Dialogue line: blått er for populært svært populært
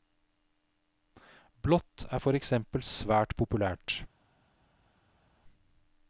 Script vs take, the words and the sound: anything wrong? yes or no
yes